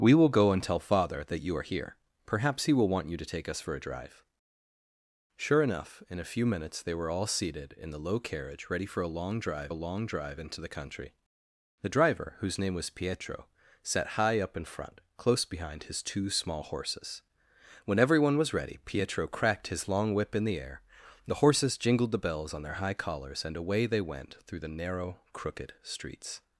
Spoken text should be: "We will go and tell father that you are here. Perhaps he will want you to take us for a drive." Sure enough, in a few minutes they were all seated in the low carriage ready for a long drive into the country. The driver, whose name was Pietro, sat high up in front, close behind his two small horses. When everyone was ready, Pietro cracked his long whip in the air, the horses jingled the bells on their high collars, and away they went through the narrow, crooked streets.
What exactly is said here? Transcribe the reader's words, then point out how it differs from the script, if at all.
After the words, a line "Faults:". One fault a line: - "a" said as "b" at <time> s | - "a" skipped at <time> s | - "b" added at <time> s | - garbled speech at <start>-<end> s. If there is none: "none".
"We will go and tell father that you are here. Perhaps he will want you to take us for a drive." Sure enough, in a few minutes they were all seated in the low carriage ready for a long drive a long drive into the country. The driver, whose name was Pietro, sat high up in front, close behind his two small horses. When everyone was ready, Pietro cracked his long whip in the air, the horses jingled the bells on their high collars, and away they went through the narrow, crooked streets.
Faults:
- "a long drive" added at 9.7 s